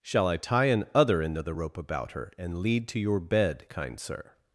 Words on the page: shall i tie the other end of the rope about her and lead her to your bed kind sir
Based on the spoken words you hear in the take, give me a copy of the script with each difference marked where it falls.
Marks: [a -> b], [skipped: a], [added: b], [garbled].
shall i tie [the -> an] other end of the rope about her and lead [skipped: her] to your bed kind sir